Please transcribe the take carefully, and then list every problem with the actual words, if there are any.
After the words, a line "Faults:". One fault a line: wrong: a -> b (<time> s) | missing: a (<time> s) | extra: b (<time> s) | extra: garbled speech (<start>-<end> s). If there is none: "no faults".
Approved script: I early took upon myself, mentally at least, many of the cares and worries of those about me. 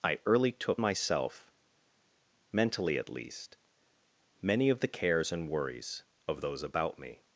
I early took myself, mentally at least, many of the cares and worries of those about me.
Faults:
missing: upon (0.8 s)